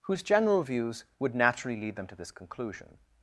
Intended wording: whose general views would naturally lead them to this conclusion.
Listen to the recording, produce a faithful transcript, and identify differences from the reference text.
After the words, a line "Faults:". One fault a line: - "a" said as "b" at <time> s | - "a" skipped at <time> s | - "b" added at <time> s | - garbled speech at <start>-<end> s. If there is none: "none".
whose general views would naturally lead them to this conclusion.
Faults:
none